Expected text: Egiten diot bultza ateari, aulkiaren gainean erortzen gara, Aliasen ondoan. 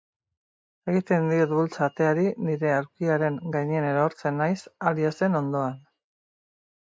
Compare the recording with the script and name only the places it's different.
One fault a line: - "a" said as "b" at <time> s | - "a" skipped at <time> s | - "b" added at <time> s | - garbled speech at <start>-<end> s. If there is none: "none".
- "nire" added at 2.5 s
- "gara" said as "naiz" at 4.4 s